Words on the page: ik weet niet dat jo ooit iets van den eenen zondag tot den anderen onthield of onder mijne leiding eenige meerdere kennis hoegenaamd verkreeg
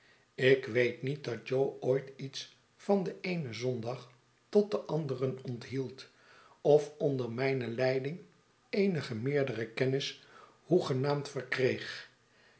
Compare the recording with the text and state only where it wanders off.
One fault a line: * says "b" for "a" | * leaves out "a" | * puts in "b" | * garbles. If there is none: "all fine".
all fine